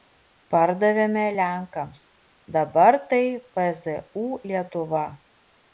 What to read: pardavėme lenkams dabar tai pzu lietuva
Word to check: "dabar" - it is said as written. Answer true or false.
true